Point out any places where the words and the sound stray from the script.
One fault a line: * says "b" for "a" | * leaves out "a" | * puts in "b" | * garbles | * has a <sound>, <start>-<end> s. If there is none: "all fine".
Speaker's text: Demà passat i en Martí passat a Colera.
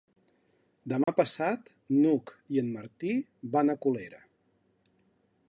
* has a dropout, 1.0-1.1 s
* puts in "n'Hug"
* says "van" for "passat"